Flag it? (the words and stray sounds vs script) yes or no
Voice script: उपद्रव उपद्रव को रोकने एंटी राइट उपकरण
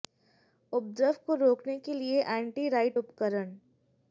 yes